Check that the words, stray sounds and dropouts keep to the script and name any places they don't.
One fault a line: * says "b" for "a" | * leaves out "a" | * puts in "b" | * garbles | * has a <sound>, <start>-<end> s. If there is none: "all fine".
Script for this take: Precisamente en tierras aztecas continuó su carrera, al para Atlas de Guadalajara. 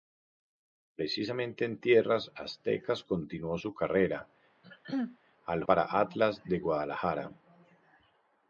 * has a throat clearing, 4.6-5.2 s